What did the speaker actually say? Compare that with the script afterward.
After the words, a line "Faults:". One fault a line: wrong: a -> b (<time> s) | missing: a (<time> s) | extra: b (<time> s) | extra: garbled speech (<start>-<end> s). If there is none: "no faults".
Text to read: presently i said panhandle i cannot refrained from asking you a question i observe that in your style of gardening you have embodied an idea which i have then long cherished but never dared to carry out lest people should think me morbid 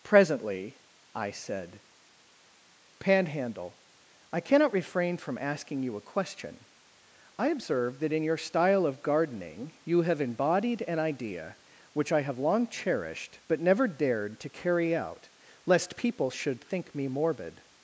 presently i said panhandle i cannot refrain from asking you a question i observe that in your style of gardening you have embodied an idea which i have long cherished but never dared to carry out lest people should think me morbid
Faults:
wrong: refrained -> refrain (4.7 s)
missing: then (12.4 s)